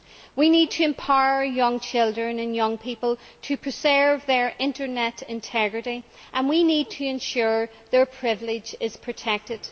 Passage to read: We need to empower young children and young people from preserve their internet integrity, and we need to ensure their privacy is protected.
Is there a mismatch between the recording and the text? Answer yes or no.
yes